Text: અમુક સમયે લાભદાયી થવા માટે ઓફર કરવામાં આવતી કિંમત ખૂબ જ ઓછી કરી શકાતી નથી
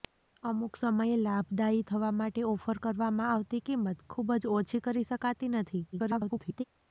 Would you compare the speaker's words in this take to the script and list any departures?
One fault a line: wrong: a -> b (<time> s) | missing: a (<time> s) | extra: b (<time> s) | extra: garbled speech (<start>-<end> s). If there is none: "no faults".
extra: garbled speech (5.9-6.6 s)